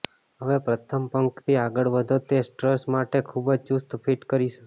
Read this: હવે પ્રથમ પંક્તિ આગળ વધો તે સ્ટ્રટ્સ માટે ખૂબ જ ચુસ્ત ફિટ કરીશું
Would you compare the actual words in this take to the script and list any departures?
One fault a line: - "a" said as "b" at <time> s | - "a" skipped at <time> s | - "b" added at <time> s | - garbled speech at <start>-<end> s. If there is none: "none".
none